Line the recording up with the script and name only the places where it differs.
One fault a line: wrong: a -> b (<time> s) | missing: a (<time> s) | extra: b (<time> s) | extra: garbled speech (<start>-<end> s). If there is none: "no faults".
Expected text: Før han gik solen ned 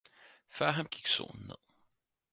no faults